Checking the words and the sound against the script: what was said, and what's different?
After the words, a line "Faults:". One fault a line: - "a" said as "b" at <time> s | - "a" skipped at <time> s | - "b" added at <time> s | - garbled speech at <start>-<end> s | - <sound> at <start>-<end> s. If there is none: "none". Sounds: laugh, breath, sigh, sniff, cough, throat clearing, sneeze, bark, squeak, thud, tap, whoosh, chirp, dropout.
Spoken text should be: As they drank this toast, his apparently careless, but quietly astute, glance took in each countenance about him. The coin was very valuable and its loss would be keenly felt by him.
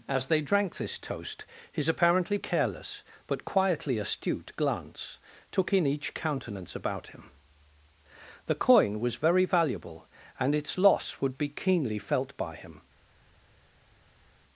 As they drank this toast, his apparently careless, but quietly astute, glance took in each countenance about him. The coin was very valuable and its loss would be keenly felt by him.
Faults:
none